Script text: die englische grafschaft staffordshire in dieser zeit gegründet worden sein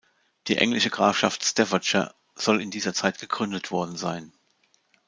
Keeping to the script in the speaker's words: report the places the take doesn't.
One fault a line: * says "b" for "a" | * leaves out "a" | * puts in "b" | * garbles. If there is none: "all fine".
* puts in "soll"